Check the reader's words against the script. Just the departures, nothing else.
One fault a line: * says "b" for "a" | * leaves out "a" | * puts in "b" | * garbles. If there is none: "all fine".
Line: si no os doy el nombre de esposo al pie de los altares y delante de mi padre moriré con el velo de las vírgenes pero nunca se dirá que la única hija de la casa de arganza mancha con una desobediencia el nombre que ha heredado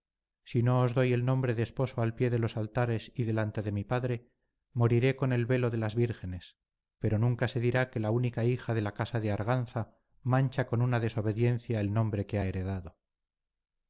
all fine